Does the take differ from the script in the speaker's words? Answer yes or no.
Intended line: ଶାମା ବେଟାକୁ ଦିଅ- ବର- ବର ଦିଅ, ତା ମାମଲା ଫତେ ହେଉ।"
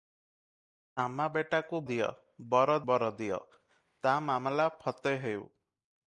no